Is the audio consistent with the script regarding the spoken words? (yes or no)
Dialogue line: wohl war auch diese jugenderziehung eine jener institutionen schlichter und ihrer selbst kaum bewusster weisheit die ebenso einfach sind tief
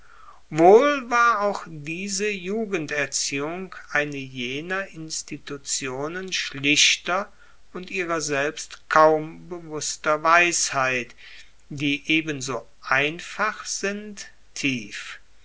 yes